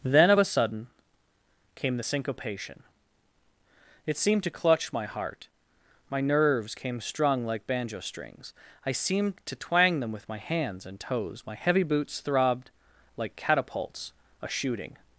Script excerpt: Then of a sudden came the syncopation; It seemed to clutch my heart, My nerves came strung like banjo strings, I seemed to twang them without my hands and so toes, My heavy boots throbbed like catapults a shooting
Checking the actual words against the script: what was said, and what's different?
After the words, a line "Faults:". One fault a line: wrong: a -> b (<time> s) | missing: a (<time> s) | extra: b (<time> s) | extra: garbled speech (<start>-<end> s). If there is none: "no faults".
Then of a sudden came the syncopation; It seemed to clutch my heart, My nerves came strung like banjo strings, I seemed to twang them with my hands and toes, My heavy boots throbbed like catapults a shooting
Faults:
wrong: without -> with (10.1 s)
missing: so (11.0 s)